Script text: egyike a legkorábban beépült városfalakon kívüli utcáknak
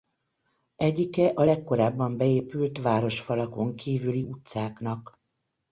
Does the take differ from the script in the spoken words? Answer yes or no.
no